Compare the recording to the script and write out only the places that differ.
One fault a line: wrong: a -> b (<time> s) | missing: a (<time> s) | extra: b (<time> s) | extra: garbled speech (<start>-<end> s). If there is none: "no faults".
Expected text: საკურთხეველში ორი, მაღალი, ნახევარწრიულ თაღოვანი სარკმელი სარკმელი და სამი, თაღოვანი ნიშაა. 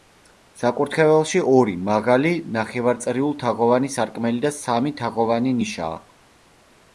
missing: სარკმელი (4.5 s)